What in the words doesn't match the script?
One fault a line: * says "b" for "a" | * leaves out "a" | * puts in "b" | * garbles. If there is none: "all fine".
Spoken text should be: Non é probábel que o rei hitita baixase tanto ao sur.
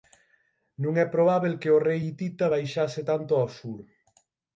all fine